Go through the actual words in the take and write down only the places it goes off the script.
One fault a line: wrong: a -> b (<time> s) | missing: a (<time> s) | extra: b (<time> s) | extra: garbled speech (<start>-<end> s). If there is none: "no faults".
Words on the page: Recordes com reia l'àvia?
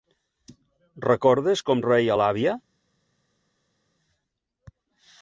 no faults